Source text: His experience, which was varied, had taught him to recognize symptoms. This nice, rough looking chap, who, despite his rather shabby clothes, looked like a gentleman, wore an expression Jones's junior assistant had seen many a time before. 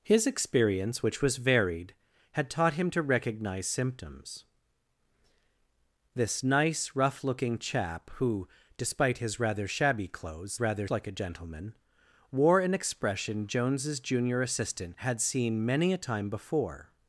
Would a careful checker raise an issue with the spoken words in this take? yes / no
yes